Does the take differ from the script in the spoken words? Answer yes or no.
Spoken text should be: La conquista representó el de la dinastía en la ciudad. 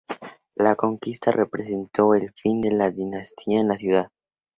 yes